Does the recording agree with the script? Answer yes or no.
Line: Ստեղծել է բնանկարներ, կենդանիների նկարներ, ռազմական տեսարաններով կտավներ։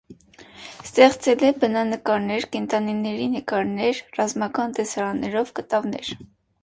yes